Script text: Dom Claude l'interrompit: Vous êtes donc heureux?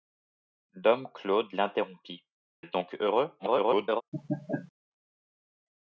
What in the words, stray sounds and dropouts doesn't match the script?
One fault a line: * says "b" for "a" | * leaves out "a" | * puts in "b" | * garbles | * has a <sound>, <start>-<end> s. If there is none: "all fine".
* leaves out "Vous"
* garbles
* has a laugh, 4.1-4.7 s